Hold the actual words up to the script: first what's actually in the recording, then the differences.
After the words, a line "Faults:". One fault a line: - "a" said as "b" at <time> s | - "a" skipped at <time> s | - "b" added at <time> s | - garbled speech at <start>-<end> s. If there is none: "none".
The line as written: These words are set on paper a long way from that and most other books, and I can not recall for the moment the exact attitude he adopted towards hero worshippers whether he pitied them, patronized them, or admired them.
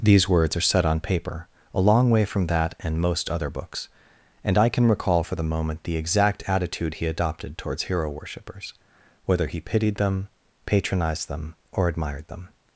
These words are set on paper a long way from that and most other books, and I can recall for the moment the exact attitude he adopted towards hero worshippers whether he pitied them, patronized them, or admired them.
Faults:
- "not" skipped at 4.9 s